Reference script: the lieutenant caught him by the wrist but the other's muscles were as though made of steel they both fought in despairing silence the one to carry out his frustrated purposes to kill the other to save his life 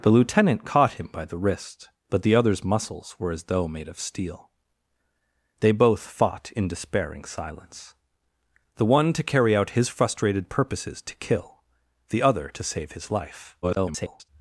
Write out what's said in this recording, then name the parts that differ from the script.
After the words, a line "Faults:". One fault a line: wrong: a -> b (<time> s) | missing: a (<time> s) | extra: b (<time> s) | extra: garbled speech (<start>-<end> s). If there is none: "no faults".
the lieutenant caught him by the wrist but the other's muscles were as though made of steel they both fought in despairing silence the one to carry out his frustrated purposes to kill the other to save his life [garbled]
Faults:
extra: garbled speech (13.6-14.3 s)